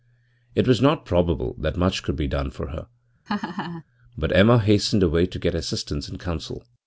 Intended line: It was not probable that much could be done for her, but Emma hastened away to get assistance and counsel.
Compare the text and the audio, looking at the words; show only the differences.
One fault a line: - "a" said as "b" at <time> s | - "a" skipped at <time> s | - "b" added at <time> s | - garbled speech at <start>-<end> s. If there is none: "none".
none